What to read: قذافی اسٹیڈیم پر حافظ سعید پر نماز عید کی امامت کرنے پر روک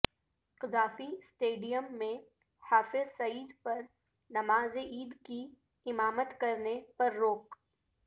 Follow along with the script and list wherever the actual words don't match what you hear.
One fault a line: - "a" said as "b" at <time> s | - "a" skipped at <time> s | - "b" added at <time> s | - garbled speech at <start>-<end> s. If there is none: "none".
- "پر" said as "میں" at 2.0 s